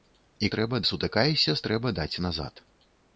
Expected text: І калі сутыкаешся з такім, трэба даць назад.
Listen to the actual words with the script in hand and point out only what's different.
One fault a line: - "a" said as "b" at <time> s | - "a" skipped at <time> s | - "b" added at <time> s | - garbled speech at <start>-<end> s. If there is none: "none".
- "калі" said as "трэба" at 0.6 s
- "такім" skipped at 1.6 s